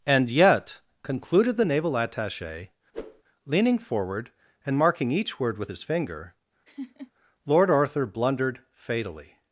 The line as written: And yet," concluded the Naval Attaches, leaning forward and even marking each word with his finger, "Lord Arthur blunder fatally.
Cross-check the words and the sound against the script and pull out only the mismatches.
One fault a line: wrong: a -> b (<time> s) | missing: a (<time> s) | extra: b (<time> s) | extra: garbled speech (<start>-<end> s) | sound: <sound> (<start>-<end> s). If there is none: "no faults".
wrong: Attaches -> Attache (2.0 s)
sound: whoosh (2.9-3.2 s)
missing: even (4.8 s)
sound: laugh (6.7-7.1 s)
wrong: blunder -> blundered (8.1 s)